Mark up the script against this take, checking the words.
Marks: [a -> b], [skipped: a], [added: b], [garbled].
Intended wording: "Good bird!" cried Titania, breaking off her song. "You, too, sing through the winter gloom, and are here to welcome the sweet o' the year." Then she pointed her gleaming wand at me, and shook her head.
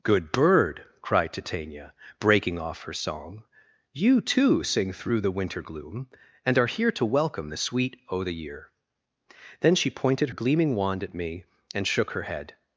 "Good bird!" cried Titania, breaking off her song. "You, too, sing through the winter gloom, and are here to welcome the sweet o' the year." Then she pointed [skipped: her] gleaming wand at me, and shook her head.